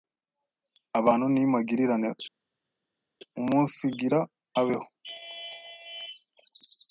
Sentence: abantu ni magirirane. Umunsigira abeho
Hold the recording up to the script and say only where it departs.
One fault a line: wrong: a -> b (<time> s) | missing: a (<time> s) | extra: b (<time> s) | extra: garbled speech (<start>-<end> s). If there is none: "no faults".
no faults